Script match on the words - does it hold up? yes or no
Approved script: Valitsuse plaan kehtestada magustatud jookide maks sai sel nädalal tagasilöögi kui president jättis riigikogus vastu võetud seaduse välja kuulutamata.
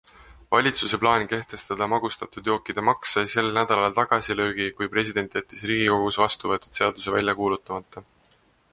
yes